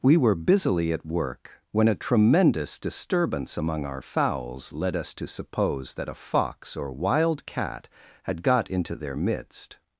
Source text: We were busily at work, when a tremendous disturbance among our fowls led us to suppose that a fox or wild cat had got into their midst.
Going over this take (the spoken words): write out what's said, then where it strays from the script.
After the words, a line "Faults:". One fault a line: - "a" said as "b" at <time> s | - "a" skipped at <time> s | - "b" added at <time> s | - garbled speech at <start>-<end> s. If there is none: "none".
We were busily at work, when a tremendous disturbance among our fowls led us to suppose that a fox or wild cat had got into their midst.
Faults:
none